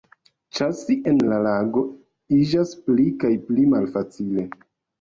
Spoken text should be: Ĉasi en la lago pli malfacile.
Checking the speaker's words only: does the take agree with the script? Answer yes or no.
no